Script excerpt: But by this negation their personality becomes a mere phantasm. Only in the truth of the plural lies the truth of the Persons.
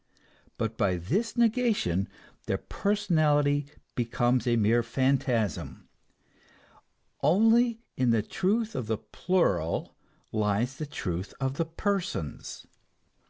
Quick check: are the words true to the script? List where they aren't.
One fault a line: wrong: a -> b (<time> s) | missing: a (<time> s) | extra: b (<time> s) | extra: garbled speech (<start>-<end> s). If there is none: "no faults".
no faults